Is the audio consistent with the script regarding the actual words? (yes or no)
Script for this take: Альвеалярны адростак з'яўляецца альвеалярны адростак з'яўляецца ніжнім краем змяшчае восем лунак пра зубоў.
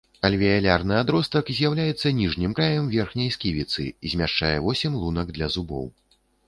no